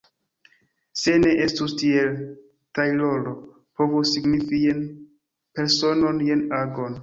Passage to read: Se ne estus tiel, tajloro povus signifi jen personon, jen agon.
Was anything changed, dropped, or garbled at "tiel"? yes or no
no